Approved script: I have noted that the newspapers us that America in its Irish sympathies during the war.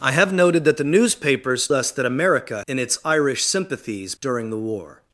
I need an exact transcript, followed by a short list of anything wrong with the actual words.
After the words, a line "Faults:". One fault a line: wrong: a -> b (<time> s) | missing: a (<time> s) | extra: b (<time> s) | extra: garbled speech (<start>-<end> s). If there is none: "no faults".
I have noted that the newspapers us that America in its Irish sympathies during the war.
Faults:
no faults